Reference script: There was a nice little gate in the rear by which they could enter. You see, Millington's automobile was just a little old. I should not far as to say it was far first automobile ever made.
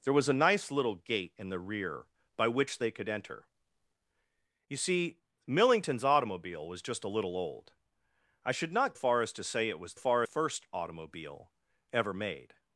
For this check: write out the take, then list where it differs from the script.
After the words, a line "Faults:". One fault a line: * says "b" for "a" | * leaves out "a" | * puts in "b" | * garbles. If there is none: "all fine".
There was a nice little gate in the rear by which they could enter. You see, Millington's automobile was just a little old. I should not far as to say it was far first automobile ever made.
Faults:
all fine